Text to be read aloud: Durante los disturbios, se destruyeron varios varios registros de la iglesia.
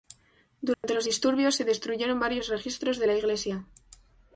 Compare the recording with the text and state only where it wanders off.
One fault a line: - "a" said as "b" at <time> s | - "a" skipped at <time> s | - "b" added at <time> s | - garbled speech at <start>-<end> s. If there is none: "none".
- "varios" skipped at 2.5 s